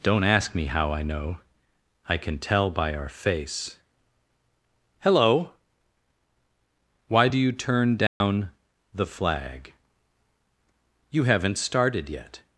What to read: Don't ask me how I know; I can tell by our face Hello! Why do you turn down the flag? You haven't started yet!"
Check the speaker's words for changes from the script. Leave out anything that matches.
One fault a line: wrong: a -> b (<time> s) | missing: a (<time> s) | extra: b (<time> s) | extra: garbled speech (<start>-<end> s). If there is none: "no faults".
no faults